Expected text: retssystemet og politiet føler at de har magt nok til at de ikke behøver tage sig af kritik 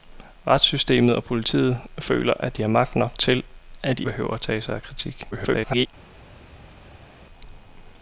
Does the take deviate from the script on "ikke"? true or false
true